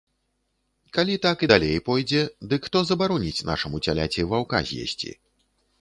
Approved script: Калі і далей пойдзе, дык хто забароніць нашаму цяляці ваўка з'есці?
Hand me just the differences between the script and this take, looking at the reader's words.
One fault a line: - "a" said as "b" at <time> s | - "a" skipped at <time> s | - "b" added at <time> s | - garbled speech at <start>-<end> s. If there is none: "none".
- "так" added at 1.2 s